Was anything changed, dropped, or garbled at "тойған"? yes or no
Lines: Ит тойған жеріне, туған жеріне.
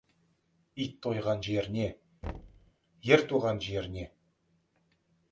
no